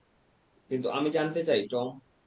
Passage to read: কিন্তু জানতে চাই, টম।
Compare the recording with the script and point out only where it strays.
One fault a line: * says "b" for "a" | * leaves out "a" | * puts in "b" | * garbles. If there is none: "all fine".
* puts in "আমি"